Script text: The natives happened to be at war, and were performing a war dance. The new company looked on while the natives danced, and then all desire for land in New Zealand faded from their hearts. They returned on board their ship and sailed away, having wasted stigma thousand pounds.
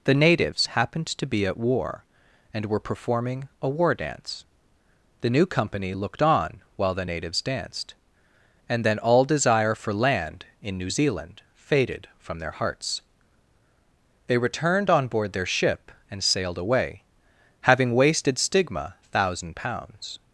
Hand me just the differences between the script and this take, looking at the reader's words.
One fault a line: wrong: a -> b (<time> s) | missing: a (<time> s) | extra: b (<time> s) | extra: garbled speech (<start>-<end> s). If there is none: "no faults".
no faults